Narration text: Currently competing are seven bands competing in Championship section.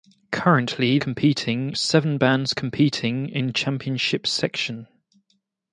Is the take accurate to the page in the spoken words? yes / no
yes